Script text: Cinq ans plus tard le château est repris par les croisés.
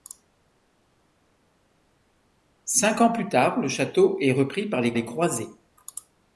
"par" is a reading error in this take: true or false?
false